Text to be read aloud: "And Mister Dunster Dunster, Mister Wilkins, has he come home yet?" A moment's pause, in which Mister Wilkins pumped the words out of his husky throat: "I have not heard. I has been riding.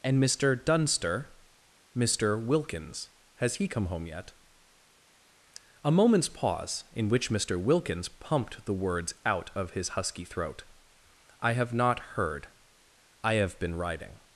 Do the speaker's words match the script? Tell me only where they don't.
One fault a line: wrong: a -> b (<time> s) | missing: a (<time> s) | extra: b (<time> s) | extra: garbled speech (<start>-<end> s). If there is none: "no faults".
missing: Dunster (1.3 s)
wrong: has -> have (13.3 s)